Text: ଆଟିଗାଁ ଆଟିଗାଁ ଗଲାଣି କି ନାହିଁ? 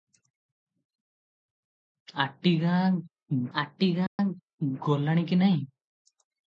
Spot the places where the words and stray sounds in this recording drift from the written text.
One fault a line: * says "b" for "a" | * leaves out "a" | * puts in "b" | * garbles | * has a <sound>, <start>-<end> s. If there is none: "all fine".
* has a dropout, 4.1-4.2 s